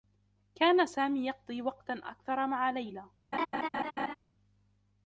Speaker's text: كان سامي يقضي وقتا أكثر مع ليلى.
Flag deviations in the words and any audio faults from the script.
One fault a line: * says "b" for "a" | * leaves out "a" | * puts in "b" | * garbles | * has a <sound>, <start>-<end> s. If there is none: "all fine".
* has a laugh, 3.3-4.1 s